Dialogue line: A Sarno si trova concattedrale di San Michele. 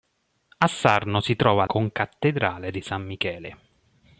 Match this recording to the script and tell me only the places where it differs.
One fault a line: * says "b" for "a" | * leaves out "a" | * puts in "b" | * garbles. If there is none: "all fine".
all fine